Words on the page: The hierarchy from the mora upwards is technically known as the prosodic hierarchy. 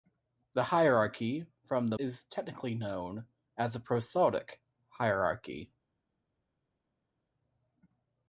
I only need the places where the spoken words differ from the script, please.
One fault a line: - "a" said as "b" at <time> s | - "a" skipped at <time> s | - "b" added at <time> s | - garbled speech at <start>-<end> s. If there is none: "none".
- "mora upwards" skipped at 2.0 s